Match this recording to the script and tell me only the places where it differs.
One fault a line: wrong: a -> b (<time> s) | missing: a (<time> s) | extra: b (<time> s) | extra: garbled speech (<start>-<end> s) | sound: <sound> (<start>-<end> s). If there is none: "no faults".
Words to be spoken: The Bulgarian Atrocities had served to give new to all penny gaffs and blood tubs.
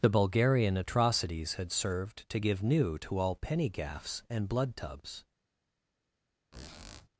sound: squeak (6.5-7.1 s)